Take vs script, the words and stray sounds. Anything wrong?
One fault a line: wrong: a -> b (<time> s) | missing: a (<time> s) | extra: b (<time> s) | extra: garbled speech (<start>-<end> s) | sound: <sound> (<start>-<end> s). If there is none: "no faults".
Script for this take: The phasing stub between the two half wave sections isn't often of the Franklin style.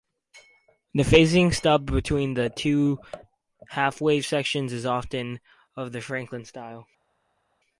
wrong: isn't -> is (4.7 s)